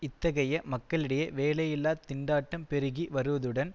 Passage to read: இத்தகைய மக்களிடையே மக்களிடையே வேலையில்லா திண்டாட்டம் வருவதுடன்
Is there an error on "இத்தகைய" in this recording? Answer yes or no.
no